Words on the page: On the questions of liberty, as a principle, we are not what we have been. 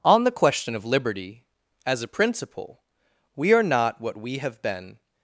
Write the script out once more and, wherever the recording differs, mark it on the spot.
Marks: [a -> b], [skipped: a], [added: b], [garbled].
On the [questions -> question] of liberty, as a principle, we are not what we have been.